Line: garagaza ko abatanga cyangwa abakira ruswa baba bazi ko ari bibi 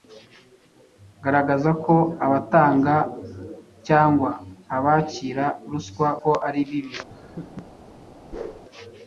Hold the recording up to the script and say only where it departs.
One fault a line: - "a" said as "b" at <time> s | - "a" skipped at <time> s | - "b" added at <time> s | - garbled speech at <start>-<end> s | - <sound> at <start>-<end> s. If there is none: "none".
- "baba bazi" skipped at 6.1 s
- laugh at 7.1-7.7 s
- whoosh at 8.3-8.6 s